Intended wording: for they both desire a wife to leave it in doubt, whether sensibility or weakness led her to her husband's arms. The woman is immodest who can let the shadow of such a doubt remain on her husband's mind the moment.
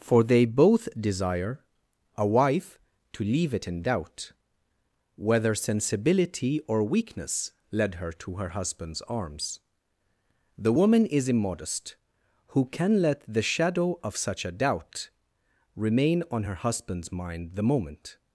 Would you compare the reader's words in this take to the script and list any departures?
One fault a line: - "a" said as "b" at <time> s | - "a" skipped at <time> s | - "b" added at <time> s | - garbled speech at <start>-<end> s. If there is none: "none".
none